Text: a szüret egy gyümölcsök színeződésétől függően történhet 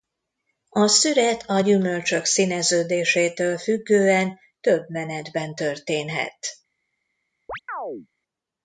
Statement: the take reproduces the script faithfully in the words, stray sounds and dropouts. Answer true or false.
false